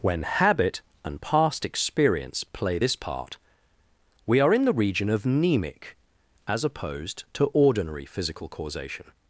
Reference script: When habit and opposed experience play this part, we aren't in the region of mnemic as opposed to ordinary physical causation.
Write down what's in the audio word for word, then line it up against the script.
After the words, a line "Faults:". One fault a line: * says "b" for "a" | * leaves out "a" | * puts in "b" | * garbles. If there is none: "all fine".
When habit and past experience play this part, we are in the region of mnemic as opposed to ordinary physical causation.
Faults:
* says "past" for "opposed"
* says "are" for "aren't"